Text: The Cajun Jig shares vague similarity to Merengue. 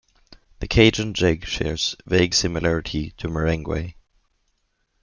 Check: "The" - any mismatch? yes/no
no